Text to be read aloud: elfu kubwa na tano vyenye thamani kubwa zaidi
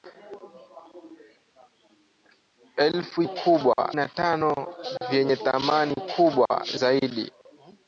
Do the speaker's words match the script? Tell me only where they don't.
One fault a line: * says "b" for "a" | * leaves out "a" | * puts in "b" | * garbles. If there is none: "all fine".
all fine